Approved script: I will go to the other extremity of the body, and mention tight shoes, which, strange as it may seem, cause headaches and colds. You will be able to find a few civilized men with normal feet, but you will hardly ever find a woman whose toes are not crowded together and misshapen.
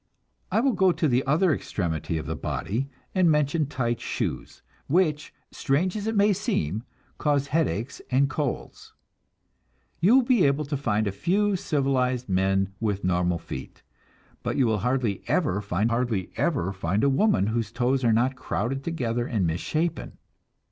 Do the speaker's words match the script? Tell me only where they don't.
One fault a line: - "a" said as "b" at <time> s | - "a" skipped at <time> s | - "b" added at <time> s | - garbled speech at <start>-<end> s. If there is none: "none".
- "hardly ever find" added at 15.9 s